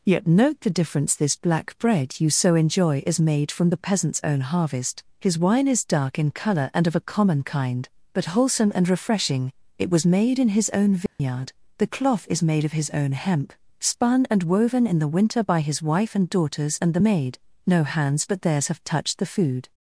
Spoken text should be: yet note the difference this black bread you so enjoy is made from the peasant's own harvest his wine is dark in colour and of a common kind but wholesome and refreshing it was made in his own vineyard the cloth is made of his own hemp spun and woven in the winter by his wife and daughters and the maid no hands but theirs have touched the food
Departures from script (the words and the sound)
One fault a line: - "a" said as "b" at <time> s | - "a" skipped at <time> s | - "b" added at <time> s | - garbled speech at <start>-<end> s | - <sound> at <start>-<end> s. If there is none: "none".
- dropout at 11.1-11.2 s